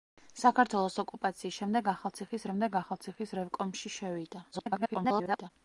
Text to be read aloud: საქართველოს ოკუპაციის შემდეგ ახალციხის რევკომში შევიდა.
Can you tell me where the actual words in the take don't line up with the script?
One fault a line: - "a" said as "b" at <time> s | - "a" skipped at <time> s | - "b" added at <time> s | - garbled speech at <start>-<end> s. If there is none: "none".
- "შემდეგ ახალციხის" added at 2.5 s
- garbled speech at 4.5-5.5 s